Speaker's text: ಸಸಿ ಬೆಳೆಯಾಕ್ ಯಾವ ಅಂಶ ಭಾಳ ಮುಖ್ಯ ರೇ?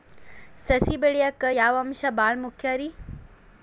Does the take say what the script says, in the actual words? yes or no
yes